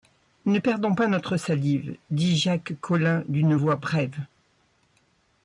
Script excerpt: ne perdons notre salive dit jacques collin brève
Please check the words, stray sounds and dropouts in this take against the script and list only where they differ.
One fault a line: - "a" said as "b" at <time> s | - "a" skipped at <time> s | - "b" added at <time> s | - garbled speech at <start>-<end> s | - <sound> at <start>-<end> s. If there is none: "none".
- "pas" added at 0.9 s
- "d'une voix" added at 3.3 s